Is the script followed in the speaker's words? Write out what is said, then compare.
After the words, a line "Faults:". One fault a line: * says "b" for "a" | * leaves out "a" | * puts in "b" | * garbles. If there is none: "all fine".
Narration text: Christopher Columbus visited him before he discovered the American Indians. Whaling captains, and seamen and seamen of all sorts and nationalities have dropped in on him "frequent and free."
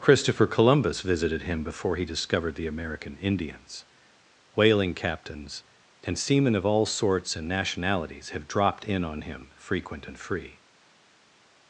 Christopher Columbus visited him before he discovered the American Indians. Whaling captains, and seamen of all sorts and nationalities have dropped in on him "frequent and free."
Faults:
* leaves out "and seamen"